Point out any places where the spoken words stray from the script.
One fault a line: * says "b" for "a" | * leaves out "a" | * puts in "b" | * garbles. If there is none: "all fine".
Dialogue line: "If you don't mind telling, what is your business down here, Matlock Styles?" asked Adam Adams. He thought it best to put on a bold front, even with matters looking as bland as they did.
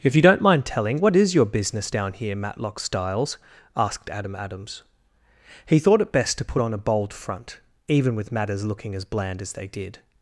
all fine